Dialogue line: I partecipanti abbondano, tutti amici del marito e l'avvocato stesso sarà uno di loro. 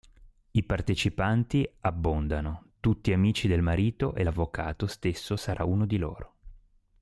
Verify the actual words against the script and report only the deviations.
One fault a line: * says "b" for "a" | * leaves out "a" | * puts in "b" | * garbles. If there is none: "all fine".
all fine